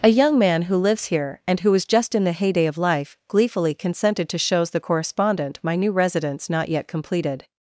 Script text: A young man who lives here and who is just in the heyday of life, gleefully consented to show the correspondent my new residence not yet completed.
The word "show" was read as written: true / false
false